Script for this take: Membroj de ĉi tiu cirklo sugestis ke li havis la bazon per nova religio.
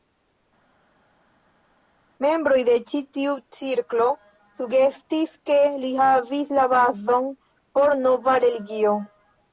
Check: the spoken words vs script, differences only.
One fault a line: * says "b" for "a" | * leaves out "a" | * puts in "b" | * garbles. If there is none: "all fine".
* says "por" for "per"